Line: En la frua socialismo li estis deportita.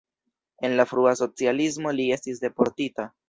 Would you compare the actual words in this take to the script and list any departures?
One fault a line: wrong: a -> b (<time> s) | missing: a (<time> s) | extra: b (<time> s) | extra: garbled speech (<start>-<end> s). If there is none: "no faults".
no faults